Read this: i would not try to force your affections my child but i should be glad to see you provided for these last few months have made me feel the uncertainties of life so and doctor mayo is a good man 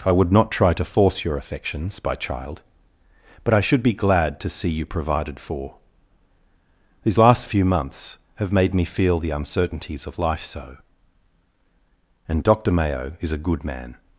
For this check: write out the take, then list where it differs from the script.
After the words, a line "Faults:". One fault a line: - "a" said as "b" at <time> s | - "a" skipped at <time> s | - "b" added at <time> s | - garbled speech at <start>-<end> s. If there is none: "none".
i would not try to force your affections by child but i should be glad to see you provided for these last few months have made me feel the uncertainties of life so and doctor mayo is a good man
Faults:
- "my" said as "by" at 2.0 s